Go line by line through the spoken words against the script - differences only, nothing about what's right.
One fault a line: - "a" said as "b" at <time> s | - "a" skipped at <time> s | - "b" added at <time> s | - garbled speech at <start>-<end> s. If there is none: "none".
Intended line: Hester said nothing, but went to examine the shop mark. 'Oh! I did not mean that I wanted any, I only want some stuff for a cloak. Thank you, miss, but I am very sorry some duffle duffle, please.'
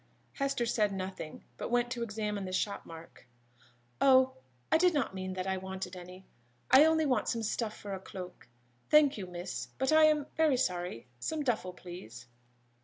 - "duffle" skipped at 11.7 s